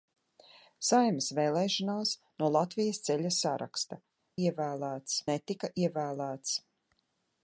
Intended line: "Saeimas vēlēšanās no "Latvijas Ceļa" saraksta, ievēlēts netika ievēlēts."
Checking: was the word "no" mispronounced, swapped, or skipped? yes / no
no